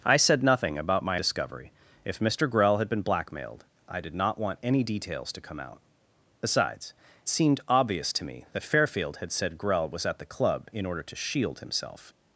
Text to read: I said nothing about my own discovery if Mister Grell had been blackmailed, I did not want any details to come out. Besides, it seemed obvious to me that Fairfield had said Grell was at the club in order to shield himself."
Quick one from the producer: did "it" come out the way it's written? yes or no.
no